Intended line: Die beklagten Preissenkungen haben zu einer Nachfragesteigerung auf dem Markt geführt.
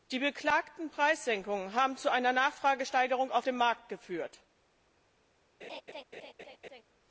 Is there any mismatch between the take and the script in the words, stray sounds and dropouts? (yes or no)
yes